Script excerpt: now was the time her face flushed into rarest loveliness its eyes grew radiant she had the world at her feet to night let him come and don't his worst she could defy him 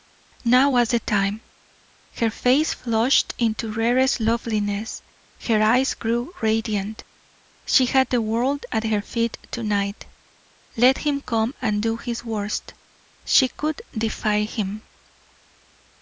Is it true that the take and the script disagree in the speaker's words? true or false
true